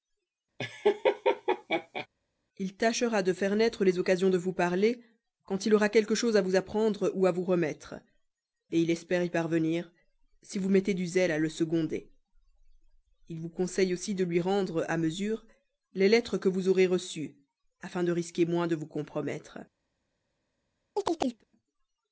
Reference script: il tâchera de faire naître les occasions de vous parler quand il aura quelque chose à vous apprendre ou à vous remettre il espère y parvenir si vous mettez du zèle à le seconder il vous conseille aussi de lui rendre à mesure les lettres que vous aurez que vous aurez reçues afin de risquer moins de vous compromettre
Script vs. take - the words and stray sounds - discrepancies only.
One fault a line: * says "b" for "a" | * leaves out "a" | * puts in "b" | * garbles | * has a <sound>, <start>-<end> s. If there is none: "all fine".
* has a laugh, 0.6-2.1 s
* leaves out "que vous aurez"
* has a chirp, 21.0-21.4 s